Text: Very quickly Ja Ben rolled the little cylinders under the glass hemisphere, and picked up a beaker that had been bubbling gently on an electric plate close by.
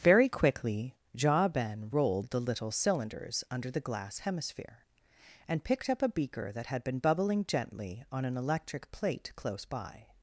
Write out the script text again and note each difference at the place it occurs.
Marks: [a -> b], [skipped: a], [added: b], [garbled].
Very quickly Ja Ben rolled the little cylinders under the glass hemisphere, and picked up a beaker that had been bubbling gently on an electric plate close by.